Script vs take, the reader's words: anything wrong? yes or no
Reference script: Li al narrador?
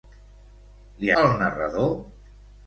no